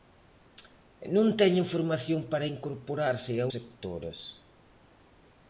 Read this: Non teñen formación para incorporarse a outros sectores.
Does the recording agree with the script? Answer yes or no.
no